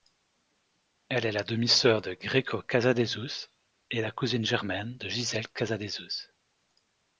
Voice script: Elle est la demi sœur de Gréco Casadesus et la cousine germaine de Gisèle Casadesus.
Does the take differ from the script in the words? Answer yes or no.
no